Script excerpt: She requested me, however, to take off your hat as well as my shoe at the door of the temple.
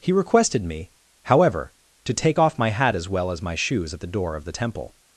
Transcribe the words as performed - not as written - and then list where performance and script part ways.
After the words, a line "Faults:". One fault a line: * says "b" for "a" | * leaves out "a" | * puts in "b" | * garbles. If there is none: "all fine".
He requested me, however, to take off my hat as well as my shoes at the door of the temple.
Faults:
* says "He" for "She"
* says "my" for "your"
* says "shoes" for "shoe"